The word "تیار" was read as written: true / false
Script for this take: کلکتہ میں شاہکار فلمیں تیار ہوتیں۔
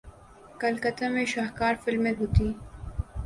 false